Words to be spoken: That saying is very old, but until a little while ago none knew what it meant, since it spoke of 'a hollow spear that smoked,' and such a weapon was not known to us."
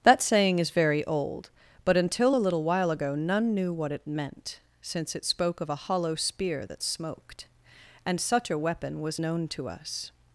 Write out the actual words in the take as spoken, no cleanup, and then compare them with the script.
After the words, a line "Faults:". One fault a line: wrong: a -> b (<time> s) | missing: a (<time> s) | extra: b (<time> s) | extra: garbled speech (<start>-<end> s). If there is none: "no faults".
That saying is very old, but until a little while ago none knew what it meant, since it spoke of 'a hollow spear that smoked,' and such a weapon was known to us."
Faults:
missing: not (9.2 s)